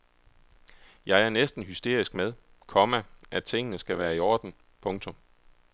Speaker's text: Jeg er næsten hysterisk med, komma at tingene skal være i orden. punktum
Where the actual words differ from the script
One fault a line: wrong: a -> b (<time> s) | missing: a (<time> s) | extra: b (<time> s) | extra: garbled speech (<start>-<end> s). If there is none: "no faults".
no faults